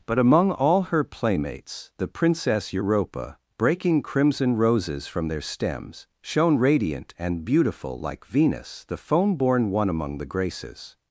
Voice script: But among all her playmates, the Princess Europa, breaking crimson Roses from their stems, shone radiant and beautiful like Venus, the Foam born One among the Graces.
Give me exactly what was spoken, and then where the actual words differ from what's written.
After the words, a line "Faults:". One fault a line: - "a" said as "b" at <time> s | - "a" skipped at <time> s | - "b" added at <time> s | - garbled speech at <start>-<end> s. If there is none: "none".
But among all her playmates, the Princess Europa, breaking crimson Roses from their stems, shone radiant and beautiful like Venus, the Foam born One among the Graces.
Faults:
none